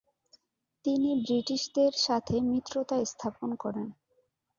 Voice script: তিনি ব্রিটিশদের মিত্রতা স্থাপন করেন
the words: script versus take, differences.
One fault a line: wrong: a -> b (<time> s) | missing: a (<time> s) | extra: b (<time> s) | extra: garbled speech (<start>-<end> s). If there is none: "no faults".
extra: সাথে (2.1 s)